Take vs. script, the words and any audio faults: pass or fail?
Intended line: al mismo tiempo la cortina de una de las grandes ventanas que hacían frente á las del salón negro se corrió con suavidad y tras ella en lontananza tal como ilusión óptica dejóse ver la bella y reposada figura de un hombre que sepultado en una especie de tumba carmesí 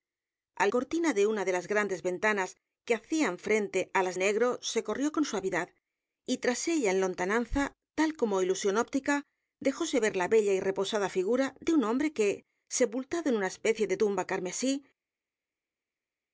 fail